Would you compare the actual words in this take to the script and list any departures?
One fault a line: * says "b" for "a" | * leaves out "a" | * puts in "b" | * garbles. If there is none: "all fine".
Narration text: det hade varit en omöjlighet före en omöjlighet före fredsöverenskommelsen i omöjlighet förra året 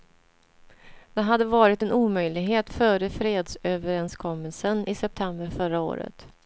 * leaves out "en omöjlighet före"
* says "september" for "omöjlighet"